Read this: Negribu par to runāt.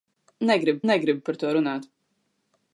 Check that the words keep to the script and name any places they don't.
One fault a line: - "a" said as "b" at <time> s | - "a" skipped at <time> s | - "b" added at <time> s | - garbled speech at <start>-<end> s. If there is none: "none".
- "negribu" added at 0.9 s